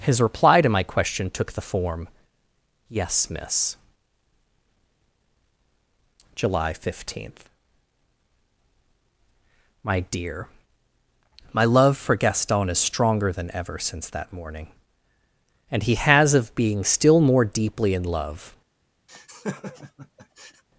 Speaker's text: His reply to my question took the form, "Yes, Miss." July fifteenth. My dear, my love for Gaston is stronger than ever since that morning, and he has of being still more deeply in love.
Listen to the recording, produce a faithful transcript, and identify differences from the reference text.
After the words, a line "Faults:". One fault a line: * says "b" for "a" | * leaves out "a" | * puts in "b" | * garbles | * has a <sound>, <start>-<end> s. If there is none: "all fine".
His reply to my question took the form, "Yes, Miss." July fifteenth. My dear, my love for Gaston is stronger than ever since that morning, and he has of being still more deeply in love.
Faults:
* has a laugh, 19.1-20.6 s